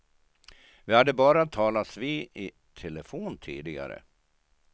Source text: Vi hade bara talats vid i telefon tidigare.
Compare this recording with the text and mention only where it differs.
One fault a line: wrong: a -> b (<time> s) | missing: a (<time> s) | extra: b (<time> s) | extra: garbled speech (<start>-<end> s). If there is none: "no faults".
no faults